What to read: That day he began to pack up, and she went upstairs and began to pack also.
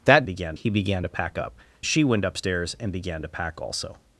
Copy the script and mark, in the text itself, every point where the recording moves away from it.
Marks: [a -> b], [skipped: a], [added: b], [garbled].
That [day -> began] he began to pack up, [skipped: and] she went upstairs and began to pack also.